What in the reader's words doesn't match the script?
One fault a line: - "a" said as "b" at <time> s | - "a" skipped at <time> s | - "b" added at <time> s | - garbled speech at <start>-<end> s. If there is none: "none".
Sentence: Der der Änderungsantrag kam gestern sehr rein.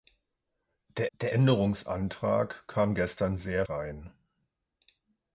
none